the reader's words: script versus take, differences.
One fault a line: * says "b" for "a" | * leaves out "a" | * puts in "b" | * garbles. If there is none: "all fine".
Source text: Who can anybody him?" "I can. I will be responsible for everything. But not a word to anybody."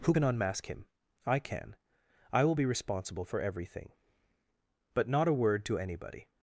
* says "unmask" for "anybody"